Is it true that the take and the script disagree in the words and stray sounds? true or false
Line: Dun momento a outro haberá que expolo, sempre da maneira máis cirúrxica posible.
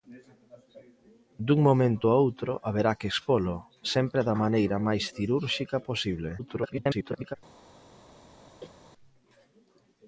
true